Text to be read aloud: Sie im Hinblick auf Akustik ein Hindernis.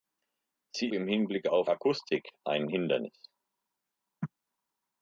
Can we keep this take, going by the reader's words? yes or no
yes